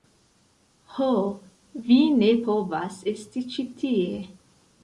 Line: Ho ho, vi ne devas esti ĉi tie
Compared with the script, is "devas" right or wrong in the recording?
wrong